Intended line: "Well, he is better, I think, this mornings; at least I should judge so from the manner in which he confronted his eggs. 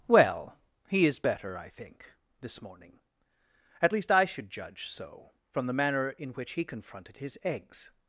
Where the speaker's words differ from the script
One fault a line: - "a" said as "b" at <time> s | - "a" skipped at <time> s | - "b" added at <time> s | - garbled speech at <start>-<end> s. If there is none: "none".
- "mornings" said as "morning" at 2.6 s